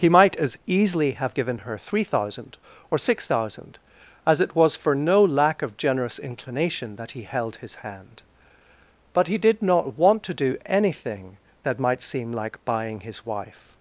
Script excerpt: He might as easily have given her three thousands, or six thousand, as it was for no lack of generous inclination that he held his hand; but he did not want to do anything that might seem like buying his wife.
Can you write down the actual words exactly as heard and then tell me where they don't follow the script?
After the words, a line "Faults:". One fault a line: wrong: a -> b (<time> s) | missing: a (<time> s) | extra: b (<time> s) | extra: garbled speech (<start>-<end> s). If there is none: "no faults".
He might as easily have given her three thousand, or six thousand, as it was for no lack of generous inclination that he held his hand; but he did not want to do anything that might seem like buying his wife.
Faults:
wrong: thousands -> thousand (2.0 s)